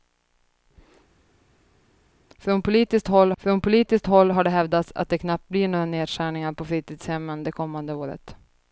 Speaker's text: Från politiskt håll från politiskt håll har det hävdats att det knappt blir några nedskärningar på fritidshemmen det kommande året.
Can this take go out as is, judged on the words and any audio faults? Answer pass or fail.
pass